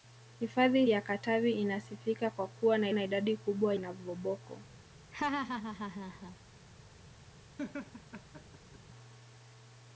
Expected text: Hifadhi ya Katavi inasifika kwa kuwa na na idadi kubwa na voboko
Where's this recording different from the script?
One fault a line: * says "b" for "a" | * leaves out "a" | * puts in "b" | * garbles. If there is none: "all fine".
all fine